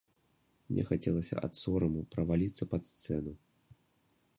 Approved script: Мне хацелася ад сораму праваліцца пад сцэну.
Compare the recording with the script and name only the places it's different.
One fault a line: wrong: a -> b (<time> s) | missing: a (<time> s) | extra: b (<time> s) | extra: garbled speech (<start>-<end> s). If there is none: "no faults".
no faults